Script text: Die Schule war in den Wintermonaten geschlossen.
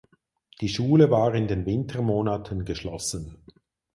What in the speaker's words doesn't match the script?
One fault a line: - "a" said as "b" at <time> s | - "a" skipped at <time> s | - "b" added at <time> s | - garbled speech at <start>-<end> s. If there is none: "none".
none